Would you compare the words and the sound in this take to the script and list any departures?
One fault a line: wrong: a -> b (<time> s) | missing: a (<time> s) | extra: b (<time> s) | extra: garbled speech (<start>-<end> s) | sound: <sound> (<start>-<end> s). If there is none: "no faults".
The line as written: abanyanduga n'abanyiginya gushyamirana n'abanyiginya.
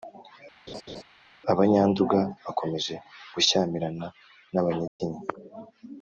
sound: laugh (0.7-1.0 s)
wrong: n'abanyiginya -> bakomeje (2.4 s)
sound: dropout (4.9-5.0 s)